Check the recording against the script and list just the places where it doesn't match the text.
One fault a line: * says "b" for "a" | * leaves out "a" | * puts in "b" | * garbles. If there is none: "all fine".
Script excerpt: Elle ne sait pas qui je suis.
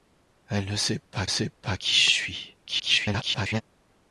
* puts in "sait pas"
* garbles